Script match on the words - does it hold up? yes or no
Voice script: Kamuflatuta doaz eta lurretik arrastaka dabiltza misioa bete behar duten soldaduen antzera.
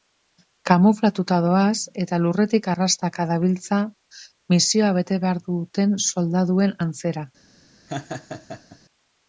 yes